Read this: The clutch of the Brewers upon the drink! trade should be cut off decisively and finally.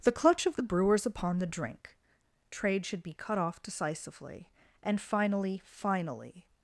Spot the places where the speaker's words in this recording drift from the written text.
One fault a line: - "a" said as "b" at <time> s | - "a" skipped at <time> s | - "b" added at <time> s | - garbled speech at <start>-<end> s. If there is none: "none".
- "finally" added at 5.7 s